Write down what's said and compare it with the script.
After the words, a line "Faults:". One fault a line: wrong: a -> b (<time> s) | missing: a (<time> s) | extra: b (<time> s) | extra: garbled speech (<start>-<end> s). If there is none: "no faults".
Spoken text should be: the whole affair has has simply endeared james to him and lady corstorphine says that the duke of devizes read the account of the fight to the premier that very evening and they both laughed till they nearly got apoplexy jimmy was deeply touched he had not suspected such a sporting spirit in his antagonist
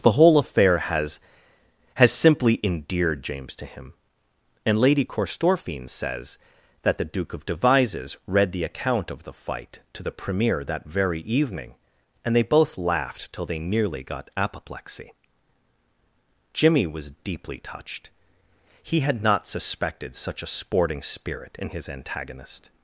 the whole affair has has simply endeared james to him and lady corstorphine says that the duke of devizes read the account of the fight to the premier that very evening and they both laughed till they nearly got apoplexy jimmy was deeply touched he had not suspected such a sporting spirit in his antagonist
Faults:
no faults